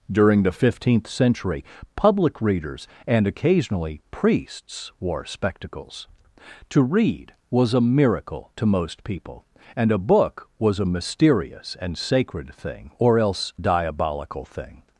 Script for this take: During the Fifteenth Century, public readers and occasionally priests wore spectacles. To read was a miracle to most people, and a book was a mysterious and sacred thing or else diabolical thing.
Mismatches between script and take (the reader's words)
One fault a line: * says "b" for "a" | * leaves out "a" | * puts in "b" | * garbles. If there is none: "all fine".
all fine